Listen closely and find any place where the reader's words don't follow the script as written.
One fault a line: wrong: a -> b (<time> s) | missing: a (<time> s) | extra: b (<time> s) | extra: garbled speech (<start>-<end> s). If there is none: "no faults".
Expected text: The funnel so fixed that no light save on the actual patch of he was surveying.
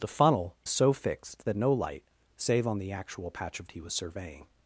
no faults